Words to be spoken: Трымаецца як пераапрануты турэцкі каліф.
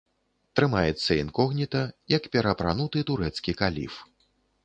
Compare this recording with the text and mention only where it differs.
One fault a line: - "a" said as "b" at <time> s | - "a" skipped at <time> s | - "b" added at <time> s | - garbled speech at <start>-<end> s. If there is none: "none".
- "інкогніта" added at 1.2 s